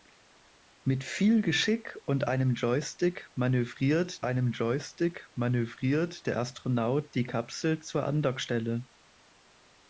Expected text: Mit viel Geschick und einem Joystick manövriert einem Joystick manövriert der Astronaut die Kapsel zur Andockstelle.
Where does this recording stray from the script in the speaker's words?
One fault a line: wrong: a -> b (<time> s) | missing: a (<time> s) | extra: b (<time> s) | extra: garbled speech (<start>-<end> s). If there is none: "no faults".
no faults